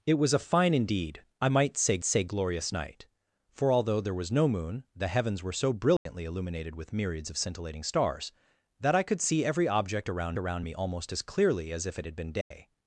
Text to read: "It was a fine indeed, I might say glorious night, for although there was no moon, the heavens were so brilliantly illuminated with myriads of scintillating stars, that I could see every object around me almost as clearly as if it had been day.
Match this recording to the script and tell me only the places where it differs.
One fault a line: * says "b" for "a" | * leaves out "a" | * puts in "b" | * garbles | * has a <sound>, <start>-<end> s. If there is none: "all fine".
* puts in "say"
* has a dropout, 6.0-6.1 s
* puts in "around"
* has a dropout, 12.4-12.5 s